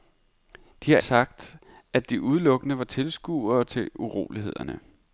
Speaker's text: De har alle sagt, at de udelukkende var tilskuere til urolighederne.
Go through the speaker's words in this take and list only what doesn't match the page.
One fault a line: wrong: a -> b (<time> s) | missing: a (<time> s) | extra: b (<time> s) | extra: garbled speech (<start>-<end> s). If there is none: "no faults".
missing: alle (1.0 s)